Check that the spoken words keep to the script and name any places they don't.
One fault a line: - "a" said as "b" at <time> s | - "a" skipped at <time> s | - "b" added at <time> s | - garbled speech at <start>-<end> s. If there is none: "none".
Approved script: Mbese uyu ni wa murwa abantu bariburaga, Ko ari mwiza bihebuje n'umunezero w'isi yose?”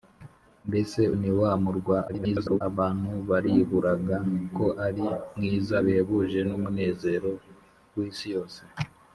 - "uyu" skipped at 1.0 s
- garbled speech at 2.1-2.6 s